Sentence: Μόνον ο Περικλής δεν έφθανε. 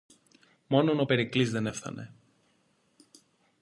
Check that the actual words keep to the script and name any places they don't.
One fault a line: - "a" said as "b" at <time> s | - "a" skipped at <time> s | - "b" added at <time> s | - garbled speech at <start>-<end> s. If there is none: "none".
none